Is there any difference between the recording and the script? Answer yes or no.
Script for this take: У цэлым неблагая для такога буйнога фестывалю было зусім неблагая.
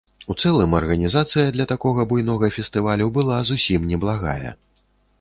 yes